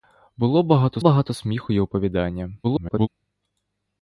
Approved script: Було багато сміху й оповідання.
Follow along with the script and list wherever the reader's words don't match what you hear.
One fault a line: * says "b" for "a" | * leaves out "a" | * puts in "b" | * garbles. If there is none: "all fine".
* puts in "багато"
* garbles